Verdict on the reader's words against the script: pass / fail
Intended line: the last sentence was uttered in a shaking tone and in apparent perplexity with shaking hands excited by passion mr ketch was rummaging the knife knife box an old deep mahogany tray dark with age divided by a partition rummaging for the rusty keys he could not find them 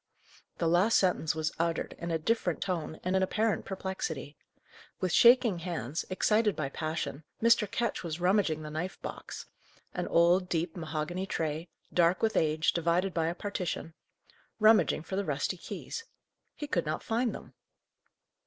fail